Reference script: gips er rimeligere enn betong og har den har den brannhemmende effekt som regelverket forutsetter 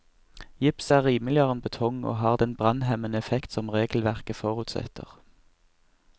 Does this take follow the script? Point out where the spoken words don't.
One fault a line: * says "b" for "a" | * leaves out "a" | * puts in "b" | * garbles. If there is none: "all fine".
* leaves out "har den"